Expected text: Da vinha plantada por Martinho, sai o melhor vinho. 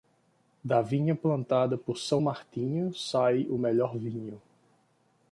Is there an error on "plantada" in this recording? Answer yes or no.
no